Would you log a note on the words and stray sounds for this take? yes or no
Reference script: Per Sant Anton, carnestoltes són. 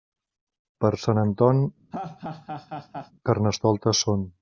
yes